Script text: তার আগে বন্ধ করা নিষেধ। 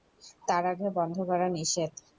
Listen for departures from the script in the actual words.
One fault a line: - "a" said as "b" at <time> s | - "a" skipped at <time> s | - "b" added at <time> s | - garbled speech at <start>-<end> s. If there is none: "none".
none